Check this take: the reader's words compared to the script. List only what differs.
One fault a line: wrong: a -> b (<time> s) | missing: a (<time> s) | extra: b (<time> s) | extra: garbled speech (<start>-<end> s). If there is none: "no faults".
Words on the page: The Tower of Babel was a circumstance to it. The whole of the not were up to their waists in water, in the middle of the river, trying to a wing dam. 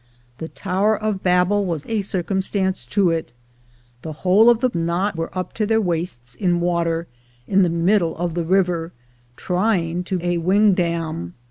no faults